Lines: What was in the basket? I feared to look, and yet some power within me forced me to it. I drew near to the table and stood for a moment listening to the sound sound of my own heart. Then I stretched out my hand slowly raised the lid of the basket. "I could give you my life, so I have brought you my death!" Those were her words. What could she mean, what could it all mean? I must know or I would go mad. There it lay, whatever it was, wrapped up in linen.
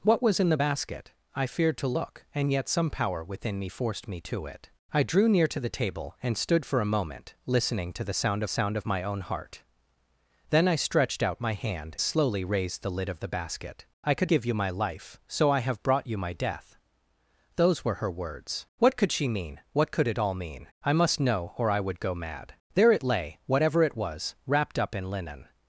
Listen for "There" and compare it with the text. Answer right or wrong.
right